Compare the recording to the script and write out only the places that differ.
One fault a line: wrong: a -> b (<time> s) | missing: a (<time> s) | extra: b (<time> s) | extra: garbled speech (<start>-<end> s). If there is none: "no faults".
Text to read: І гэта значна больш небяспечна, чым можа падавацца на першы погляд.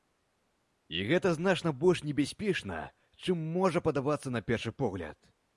no faults